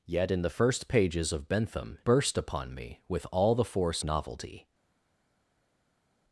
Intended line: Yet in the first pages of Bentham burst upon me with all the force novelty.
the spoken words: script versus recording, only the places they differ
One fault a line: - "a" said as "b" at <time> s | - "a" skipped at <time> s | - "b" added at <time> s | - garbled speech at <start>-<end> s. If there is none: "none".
none